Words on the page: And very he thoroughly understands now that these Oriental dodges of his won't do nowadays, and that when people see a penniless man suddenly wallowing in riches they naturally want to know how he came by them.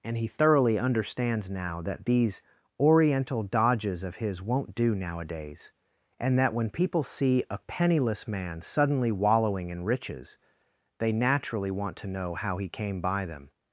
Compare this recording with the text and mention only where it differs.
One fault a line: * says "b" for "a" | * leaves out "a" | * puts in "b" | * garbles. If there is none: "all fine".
* leaves out "very"